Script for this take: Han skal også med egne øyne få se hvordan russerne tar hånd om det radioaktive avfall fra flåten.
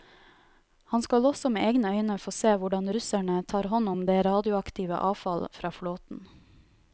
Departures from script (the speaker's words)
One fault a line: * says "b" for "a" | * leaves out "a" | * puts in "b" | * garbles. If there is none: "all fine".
all fine